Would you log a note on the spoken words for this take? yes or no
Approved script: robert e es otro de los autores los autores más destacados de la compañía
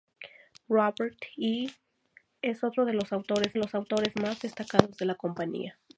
no